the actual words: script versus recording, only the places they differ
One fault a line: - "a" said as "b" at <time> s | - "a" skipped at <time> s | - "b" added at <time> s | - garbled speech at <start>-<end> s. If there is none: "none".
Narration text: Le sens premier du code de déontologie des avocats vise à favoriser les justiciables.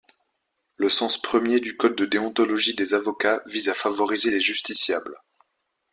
none